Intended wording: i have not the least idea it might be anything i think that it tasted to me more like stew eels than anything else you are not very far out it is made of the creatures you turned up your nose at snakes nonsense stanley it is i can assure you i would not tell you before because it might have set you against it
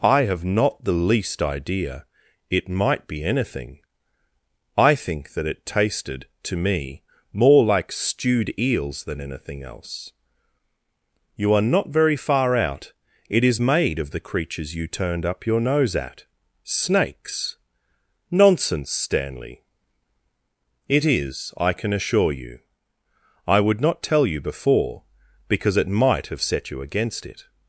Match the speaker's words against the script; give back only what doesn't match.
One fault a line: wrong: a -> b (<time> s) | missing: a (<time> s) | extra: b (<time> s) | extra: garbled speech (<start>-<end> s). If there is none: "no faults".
wrong: stew -> stewed (7.9 s)